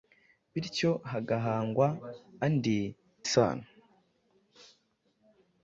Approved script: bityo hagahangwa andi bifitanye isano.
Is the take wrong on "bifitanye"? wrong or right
wrong